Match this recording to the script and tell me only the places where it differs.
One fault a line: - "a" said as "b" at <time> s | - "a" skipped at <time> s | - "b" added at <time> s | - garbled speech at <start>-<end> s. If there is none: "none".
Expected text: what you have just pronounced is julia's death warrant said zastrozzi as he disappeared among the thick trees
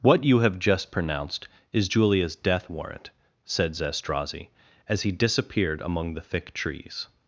none